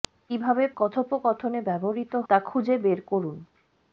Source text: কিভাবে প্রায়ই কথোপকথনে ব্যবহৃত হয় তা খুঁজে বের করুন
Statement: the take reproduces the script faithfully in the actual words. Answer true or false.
false